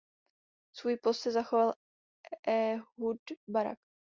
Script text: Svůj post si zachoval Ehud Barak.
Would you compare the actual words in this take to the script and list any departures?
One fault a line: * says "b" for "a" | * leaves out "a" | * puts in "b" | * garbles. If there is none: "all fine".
all fine